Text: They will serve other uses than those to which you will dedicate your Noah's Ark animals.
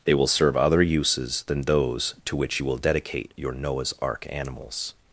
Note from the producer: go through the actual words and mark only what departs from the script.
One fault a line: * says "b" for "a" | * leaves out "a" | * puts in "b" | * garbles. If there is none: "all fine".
all fine